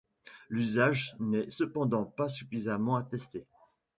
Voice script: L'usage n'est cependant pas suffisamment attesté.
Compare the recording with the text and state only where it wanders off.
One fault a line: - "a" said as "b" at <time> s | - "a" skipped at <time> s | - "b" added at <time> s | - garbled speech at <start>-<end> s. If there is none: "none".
none